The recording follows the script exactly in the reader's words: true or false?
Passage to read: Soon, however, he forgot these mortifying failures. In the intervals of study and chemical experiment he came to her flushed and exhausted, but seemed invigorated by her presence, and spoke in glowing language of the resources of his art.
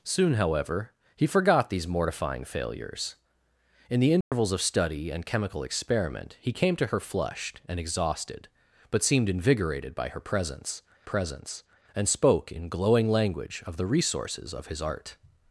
false